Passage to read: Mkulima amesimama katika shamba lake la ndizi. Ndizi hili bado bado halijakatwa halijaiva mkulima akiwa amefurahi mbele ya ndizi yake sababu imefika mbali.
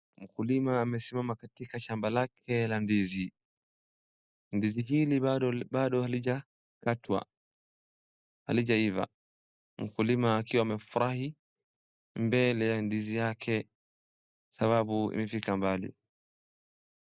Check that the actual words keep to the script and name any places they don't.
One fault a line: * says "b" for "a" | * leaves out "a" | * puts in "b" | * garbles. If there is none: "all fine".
all fine